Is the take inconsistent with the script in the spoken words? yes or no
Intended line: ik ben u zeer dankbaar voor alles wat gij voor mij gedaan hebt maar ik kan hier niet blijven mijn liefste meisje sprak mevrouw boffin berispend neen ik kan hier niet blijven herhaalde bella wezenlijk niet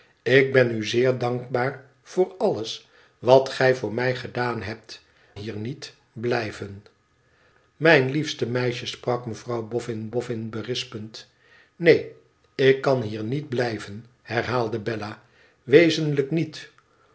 yes